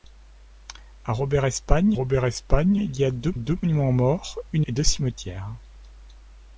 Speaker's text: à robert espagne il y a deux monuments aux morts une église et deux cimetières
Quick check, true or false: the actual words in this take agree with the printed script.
false